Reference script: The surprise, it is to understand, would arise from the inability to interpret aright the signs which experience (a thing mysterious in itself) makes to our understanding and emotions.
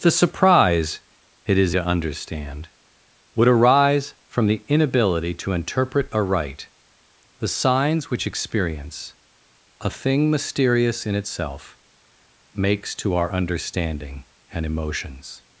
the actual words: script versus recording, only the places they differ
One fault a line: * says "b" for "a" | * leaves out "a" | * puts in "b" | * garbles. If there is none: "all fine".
all fine